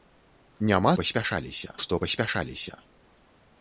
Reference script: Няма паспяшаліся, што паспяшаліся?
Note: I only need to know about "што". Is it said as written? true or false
true